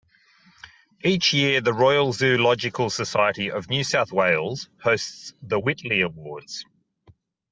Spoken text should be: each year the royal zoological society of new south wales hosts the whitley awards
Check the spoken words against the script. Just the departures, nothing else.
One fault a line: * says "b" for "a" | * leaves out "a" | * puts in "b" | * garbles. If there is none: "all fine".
all fine